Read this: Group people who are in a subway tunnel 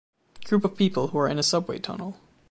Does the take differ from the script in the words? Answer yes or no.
yes